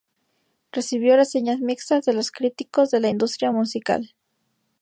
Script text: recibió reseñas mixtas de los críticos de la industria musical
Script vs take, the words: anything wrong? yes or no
no